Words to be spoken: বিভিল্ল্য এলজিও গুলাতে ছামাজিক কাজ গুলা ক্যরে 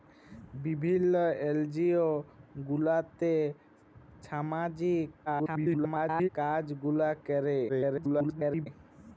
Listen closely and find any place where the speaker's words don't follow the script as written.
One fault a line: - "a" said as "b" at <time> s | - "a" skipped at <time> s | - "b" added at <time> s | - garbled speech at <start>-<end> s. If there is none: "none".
- garbled speech at 5.3-6.3 s
- garbled speech at 7.7-8.7 s